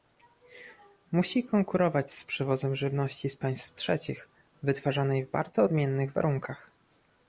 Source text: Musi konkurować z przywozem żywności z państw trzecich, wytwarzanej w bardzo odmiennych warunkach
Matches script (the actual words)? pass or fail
pass